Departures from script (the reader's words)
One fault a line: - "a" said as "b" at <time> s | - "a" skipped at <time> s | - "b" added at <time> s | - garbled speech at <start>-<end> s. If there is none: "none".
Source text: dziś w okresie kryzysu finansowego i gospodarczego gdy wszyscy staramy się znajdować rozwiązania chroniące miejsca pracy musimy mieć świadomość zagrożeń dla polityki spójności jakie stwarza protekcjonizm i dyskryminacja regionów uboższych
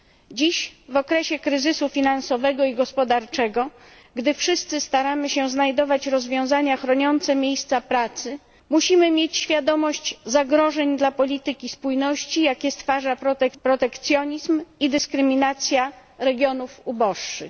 none